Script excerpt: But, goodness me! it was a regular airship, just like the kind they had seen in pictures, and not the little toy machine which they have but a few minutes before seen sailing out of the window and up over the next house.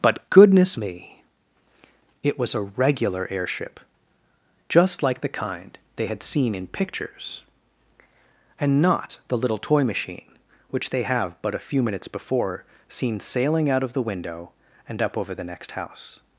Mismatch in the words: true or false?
false